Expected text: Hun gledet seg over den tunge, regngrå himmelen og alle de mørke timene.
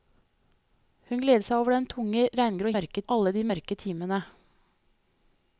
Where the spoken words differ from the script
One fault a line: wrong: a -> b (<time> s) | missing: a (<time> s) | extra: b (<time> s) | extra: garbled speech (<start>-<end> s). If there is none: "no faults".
wrong: himmelen -> mørke (2.8 s)